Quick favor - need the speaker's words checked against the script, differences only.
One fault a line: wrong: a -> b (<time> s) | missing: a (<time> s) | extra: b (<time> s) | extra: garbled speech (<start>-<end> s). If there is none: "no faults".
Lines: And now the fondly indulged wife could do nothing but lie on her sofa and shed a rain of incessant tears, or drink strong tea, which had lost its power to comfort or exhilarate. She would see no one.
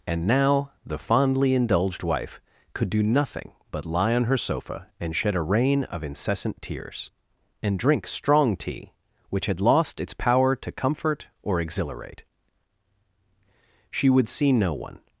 wrong: or -> and (7.6 s)